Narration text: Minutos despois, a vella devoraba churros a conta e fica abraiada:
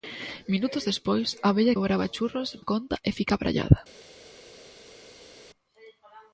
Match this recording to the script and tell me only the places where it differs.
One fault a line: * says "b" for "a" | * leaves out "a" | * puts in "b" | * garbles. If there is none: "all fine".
all fine